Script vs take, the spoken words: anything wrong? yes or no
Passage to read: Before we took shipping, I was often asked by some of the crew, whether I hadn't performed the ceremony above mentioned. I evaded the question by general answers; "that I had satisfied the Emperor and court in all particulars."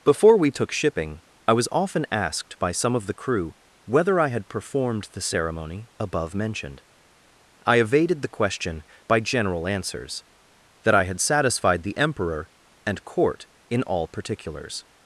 yes